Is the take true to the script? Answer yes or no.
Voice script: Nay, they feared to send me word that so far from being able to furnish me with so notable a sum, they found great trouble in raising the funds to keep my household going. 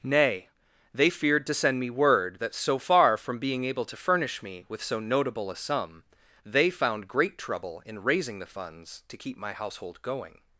yes